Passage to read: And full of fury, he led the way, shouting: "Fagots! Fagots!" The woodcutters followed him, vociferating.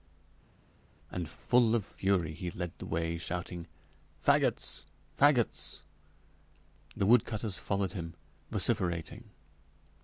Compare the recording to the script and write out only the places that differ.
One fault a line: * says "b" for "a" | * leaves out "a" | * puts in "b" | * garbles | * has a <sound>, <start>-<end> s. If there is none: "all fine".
all fine